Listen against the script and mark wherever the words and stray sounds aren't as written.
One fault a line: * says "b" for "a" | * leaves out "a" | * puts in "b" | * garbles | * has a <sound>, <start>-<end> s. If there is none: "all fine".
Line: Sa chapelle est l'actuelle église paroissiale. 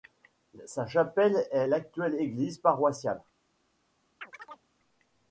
* has a chirp, 4.2-4.7 s